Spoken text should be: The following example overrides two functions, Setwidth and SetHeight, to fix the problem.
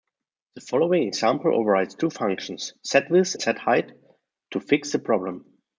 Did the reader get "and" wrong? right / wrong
wrong